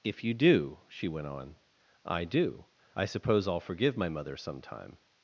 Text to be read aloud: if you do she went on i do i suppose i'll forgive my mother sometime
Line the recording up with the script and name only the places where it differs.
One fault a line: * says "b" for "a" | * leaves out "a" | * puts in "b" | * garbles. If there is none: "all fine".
all fine